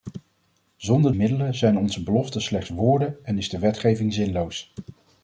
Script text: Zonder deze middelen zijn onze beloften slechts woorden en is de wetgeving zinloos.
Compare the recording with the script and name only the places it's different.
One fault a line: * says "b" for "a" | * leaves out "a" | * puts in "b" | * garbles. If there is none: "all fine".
* leaves out "deze"